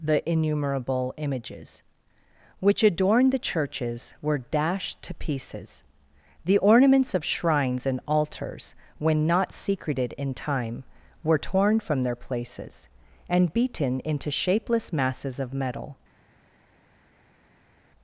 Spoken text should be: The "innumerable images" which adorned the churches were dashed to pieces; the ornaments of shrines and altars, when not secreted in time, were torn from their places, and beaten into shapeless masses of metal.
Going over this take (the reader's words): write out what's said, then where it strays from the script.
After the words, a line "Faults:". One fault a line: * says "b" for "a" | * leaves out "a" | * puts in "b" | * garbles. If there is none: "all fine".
The "innumerable images" which adorned the churches were dashed to pieces; the ornaments of shrines and altars, when not secreted in time, were torn from their places, and beaten into shapeless masses of metal.
Faults:
all fine